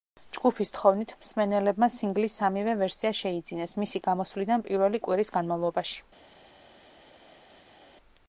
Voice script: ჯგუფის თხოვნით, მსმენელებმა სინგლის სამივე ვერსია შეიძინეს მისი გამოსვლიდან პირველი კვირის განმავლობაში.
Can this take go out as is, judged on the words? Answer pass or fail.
pass